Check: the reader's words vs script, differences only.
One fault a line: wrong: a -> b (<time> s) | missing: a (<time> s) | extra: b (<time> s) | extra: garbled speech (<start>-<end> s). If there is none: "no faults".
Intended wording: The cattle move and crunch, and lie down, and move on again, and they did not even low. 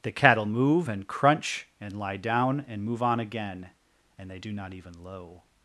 wrong: did -> do (4.4 s)